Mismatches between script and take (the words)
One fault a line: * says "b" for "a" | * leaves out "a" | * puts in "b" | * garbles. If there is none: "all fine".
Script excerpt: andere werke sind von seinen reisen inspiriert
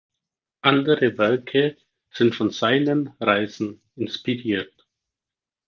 all fine